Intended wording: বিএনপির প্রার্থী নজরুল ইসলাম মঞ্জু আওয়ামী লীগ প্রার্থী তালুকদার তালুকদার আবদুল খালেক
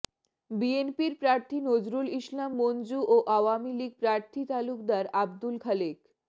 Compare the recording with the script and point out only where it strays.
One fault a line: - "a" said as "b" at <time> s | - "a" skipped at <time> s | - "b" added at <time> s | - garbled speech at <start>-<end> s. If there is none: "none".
- "ও" added at 3.1 s
- "তালুকদার" skipped at 5.1 s